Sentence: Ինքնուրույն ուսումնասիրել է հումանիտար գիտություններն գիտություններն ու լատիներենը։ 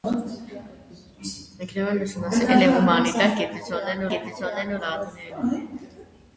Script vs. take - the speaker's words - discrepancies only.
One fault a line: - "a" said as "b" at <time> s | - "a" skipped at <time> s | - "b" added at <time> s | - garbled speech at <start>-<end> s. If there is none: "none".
none